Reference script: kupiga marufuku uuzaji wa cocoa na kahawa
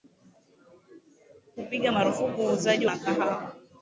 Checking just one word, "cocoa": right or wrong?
wrong